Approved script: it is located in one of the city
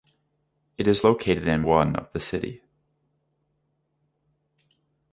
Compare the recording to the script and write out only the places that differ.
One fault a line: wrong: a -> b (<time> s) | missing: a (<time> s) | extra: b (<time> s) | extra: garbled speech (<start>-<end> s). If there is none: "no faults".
no faults